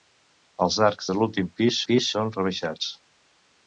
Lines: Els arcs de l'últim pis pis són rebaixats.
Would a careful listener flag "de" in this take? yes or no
no